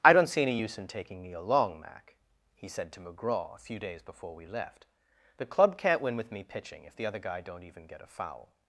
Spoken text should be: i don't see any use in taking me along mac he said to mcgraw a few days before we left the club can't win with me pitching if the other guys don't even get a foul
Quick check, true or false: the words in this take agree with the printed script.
false